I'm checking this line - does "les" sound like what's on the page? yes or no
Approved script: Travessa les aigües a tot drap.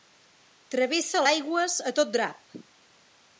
no